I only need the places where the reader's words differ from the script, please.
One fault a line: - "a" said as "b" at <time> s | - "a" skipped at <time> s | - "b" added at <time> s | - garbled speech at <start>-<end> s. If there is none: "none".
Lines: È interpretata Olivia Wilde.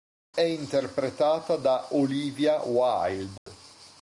- "da" added at 1.6 s